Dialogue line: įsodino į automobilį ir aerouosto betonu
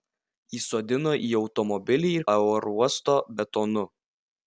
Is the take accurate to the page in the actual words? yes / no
yes